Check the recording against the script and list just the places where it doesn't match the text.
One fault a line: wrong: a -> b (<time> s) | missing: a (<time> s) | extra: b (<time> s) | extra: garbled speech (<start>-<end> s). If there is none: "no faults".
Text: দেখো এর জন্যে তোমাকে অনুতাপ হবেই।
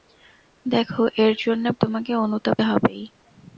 no faults